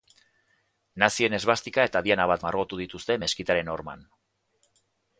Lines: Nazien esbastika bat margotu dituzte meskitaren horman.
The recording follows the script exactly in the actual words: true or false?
false